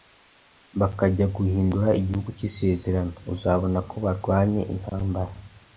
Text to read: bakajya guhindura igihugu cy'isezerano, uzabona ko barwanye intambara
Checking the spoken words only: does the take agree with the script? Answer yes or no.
yes